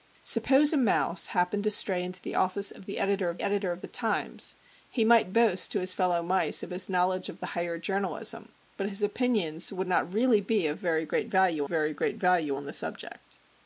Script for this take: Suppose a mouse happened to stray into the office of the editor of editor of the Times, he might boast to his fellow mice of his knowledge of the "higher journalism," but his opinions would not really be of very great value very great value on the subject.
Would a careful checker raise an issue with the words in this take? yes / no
no